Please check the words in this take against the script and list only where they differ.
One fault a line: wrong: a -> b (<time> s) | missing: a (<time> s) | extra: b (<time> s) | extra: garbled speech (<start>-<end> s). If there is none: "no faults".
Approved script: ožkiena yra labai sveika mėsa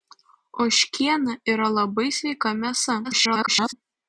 extra: garbled speech (3.0-3.7 s)